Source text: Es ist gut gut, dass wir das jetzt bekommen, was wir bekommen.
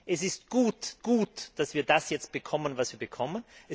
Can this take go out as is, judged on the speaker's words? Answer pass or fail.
pass